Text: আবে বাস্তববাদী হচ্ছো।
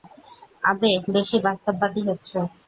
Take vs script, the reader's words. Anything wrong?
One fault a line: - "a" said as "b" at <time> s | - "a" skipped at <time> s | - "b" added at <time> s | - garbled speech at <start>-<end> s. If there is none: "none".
- "বেশি" added at 1.1 s